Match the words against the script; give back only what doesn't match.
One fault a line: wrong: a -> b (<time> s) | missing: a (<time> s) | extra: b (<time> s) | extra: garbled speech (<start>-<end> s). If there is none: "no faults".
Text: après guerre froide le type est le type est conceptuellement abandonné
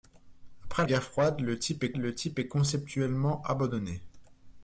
no faults